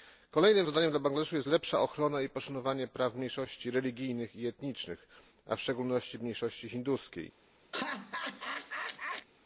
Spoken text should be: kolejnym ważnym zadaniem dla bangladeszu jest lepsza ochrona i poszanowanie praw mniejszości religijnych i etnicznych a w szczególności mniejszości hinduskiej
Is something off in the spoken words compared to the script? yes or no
yes